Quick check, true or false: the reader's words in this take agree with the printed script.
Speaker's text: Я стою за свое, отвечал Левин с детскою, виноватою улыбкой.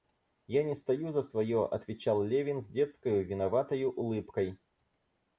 false